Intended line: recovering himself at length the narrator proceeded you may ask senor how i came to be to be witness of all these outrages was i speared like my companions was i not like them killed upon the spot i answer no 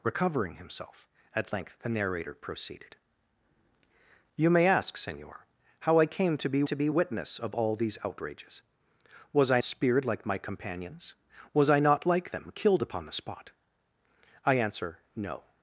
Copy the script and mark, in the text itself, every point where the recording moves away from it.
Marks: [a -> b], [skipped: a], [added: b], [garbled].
recovering himself at length the narrator proceeded you may ask senor how i came to be to be witness of all these outrages was i speared like my companions was i not like them killed upon the spot i answer no